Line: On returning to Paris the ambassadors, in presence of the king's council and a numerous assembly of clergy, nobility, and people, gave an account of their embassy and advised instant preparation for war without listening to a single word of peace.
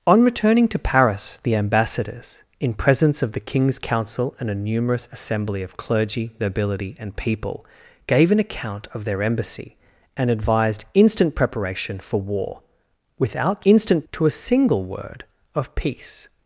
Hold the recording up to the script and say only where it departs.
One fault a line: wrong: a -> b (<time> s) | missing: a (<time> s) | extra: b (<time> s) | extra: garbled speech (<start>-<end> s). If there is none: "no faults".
wrong: listening -> instant (13.7 s)